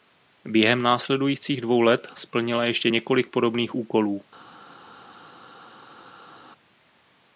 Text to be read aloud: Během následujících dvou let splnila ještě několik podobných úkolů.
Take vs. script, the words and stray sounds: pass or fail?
pass